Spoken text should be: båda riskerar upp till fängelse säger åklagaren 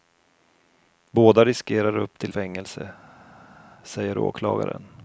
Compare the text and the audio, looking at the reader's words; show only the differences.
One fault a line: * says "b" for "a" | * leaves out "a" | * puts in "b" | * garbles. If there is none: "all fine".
all fine